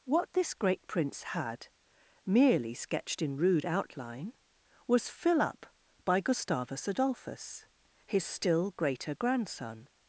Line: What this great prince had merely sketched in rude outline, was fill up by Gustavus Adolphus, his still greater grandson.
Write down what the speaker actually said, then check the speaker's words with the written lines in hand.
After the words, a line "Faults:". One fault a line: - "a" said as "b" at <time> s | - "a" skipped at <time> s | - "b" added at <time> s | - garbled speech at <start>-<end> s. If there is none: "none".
What this great prince had merely sketched in rude outline, was fill up by Gustavus Adolphus, his still greater grandson.
Faults:
none